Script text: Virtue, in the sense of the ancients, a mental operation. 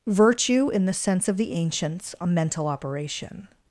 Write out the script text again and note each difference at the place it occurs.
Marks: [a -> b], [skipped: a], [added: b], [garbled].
Virtue, in the sense of the ancients, a mental operation.